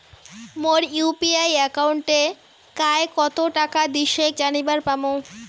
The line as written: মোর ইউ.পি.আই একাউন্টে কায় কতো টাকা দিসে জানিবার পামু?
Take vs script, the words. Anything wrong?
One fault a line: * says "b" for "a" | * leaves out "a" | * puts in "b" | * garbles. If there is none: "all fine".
all fine